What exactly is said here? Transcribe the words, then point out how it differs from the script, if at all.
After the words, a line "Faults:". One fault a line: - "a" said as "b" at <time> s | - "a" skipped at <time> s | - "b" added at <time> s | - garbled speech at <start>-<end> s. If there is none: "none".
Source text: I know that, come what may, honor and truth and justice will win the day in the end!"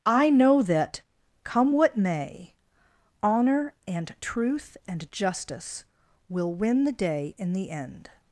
I know that, come what may, honor and truth and justice will win the day in the end!"
Faults:
none